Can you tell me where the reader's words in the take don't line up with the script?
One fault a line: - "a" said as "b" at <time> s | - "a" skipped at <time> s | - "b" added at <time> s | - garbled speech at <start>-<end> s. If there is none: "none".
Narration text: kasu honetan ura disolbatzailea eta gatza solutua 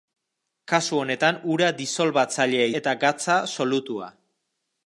none